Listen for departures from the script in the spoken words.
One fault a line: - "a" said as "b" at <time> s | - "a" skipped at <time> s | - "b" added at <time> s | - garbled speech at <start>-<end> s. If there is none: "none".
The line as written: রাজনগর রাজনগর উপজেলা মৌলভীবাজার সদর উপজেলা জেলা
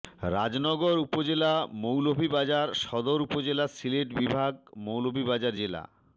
- "রাজনগর" skipped at 0.9 s
- "সিলেট বিভাগ মৌলভীবাজার" added at 3.8 s